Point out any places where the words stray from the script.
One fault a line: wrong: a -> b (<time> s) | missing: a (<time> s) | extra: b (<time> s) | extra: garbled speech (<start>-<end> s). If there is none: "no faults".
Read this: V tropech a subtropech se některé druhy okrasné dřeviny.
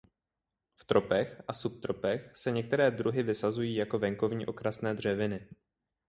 extra: vysazují jako venkovní (3.2 s)